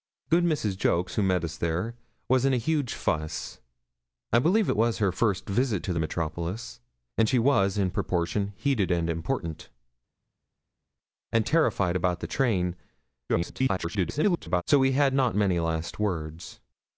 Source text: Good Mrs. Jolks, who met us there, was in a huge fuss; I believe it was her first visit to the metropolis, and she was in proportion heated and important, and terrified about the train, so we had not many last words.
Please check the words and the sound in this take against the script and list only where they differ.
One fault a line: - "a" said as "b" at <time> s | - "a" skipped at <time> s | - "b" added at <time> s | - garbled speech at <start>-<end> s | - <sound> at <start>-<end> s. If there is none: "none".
- garbled speech at 13.3-14.6 s